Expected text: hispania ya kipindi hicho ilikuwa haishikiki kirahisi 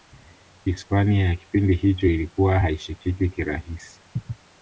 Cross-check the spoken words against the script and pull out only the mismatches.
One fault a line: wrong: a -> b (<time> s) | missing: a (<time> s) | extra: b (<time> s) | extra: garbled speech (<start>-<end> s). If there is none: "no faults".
no faults